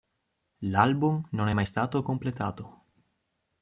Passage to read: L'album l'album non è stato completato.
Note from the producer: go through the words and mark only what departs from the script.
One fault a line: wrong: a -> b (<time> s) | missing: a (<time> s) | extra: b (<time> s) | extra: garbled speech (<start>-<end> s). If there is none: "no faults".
missing: l'album (1.2 s)
extra: mai (1.5 s)